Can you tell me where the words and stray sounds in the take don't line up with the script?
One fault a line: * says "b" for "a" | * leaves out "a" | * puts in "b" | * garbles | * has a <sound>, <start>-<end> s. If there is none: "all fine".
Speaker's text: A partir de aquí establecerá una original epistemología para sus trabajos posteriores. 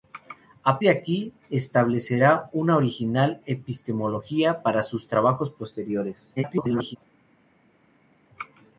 * leaves out "partir"
* garbles